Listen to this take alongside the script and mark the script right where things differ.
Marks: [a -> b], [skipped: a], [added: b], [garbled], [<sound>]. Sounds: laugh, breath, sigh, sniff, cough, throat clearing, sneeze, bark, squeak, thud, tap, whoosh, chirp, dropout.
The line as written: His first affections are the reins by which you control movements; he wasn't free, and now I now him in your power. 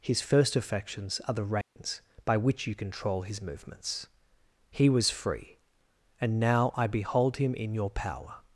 His first affections are the reins [dropout] by which you control [added: his] movements; he [wasn't -> was] free, and now I [now -> behold] him in your power.